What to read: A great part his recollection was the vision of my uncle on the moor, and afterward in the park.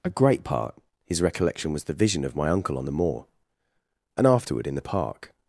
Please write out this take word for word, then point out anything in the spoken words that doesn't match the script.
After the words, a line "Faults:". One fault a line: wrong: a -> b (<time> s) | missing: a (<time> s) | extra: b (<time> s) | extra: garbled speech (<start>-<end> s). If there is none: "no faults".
A great part his recollection was the vision of my uncle on the moor, and afterward in the park.
Faults:
no faults